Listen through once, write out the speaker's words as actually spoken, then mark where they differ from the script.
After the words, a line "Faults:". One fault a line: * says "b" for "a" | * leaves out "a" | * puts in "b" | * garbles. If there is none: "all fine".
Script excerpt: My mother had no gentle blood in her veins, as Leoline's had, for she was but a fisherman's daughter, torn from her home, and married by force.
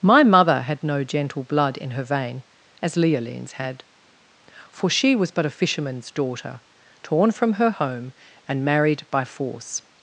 My mother had no gentle blood in her vein, as Leoline's had, for she was but a fisherman's daughter, torn from her home, and married by force.
Faults:
* says "vein" for "veins"